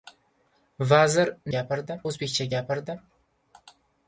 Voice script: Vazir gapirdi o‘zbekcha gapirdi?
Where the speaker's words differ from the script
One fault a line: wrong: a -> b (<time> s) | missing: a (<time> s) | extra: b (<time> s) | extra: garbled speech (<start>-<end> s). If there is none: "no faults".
no faults